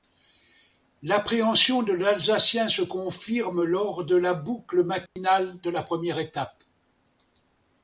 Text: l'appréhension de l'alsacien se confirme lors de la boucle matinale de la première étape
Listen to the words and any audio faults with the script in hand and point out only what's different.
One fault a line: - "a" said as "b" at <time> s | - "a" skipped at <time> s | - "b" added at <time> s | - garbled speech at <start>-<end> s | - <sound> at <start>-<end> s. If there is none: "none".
- dropout at 5.1-5.2 s